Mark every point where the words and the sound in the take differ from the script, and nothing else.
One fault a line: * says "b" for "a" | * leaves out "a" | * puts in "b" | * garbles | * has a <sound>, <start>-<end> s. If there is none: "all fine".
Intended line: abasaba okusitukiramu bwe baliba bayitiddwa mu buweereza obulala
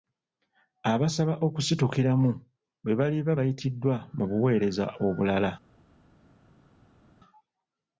all fine